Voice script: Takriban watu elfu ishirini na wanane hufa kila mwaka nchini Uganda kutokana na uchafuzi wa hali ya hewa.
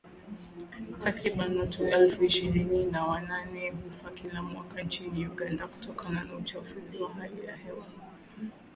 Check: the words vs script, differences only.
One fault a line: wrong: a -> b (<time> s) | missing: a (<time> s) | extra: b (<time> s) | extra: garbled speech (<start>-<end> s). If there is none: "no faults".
no faults